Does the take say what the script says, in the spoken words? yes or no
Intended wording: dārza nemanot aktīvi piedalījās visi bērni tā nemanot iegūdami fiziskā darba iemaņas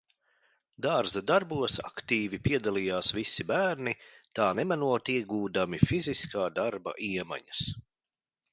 no